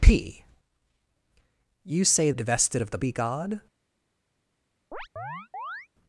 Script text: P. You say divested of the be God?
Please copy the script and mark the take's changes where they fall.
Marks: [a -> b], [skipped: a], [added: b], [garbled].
P. You say divested of the be God?